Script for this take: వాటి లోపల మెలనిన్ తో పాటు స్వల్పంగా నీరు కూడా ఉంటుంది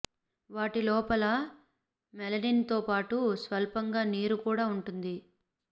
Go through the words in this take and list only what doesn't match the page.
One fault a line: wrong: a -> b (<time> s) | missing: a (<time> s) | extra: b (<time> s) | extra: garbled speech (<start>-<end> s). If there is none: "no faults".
no faults